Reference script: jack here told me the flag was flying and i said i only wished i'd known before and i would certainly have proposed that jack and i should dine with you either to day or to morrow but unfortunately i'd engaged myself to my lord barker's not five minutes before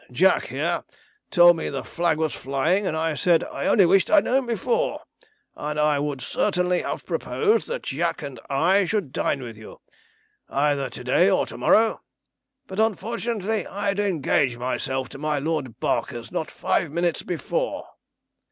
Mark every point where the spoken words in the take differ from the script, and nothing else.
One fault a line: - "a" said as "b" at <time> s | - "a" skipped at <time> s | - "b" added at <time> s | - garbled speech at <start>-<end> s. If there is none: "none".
none